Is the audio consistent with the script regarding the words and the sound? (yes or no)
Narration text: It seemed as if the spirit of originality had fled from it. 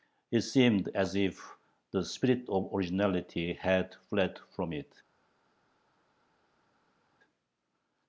yes